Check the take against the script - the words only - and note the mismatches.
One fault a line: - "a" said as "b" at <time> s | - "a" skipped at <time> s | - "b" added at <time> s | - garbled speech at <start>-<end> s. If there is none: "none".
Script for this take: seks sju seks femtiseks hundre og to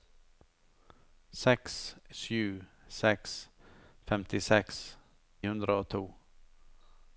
none